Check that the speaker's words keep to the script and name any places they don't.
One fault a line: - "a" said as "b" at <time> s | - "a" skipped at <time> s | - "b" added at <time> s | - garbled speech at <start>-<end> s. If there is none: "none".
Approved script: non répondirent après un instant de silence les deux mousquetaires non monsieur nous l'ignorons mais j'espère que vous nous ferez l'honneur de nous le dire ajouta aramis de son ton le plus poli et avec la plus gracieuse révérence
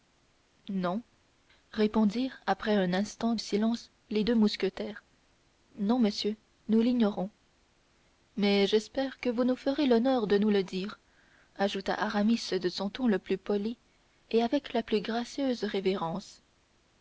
- "de" skipped at 3.4 s